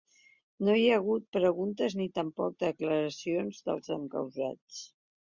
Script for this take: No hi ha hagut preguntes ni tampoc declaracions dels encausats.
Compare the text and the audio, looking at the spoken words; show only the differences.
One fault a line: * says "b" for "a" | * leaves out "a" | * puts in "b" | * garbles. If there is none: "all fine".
all fine